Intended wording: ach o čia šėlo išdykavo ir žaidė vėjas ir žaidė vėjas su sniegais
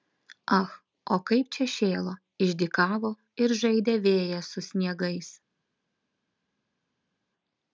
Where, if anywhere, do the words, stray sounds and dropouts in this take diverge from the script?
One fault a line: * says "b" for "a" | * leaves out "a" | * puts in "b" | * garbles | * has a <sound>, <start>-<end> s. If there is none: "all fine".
* puts in "kaip"
* leaves out "ir žaidė vėjas"